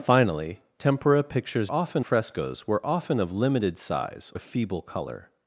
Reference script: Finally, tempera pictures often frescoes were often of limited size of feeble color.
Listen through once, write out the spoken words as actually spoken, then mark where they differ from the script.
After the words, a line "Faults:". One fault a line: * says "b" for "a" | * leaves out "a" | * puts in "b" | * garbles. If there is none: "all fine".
Finally, tempera pictures often frescoes were often of limited size of feeble color.
Faults:
all fine